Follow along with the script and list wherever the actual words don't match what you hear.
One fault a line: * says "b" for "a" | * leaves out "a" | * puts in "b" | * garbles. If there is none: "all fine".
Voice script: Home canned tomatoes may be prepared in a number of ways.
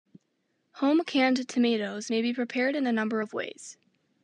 all fine